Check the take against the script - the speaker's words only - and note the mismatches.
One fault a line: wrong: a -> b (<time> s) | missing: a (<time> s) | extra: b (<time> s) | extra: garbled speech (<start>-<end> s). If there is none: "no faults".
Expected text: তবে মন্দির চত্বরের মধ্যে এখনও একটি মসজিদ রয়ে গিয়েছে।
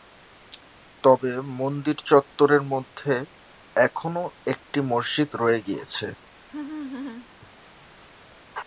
no faults